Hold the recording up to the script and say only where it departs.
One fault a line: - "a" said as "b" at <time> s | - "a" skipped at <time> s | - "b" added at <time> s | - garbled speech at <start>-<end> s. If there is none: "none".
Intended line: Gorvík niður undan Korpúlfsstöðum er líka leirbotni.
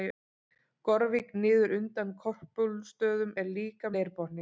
none